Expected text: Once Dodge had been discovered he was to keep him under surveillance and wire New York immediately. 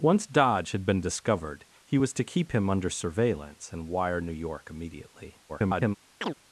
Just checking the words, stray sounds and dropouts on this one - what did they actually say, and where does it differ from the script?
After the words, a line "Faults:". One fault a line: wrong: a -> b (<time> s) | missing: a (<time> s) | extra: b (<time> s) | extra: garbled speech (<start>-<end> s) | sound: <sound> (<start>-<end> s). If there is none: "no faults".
Once Dodge had been discovered he was to keep him under surveillance and wire New York immediately. [garbled]
Faults:
extra: garbled speech (5.5-6.0 s)
sound: chirp (6.2-6.4 s)